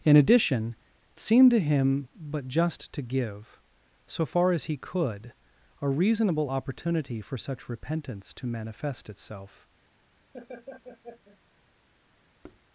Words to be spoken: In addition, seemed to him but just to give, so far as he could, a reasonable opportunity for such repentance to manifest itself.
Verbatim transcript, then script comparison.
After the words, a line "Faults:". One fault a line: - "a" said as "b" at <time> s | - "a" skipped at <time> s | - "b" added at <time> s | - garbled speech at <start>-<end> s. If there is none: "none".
In addition, seemed to him but just to give, so far as he could, a reasonable opportunity for such repentance to manifest itself.
Faults:
none